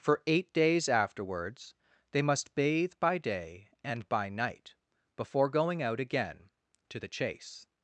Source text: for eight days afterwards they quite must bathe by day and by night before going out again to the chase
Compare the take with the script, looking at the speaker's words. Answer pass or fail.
fail